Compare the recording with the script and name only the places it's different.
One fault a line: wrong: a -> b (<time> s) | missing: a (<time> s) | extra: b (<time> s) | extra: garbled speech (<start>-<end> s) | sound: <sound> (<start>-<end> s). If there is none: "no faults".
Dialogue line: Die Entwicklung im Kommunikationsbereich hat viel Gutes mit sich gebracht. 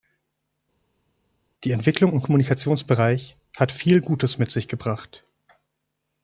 no faults